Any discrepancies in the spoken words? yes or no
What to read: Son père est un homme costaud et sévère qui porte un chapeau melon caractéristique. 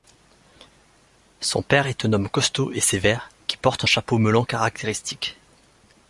no